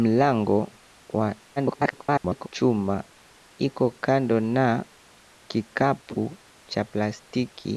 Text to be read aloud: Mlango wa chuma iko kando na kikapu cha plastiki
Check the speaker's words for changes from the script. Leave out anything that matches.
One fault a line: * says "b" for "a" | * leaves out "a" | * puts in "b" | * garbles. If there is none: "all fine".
* garbles